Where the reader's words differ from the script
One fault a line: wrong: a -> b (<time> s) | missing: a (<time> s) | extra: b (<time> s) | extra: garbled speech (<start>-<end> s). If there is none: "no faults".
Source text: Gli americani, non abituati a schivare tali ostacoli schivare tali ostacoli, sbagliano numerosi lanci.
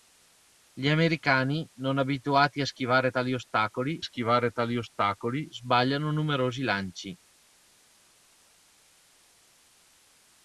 no faults